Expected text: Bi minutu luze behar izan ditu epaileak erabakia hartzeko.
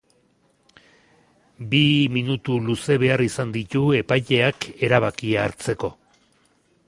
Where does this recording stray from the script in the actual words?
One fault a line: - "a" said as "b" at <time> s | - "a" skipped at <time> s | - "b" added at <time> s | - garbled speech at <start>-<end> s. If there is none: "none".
none